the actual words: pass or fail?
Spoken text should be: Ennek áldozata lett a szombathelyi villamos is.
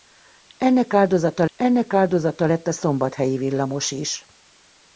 fail